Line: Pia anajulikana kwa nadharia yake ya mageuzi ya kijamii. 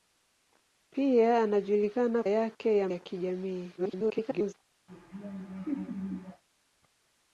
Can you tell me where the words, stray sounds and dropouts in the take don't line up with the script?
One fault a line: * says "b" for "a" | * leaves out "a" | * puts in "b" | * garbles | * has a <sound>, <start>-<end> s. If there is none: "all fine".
* leaves out "kwa nadharia"
* leaves out "mageuzi"
* garbles
* has a laugh, 4.9-6.4 s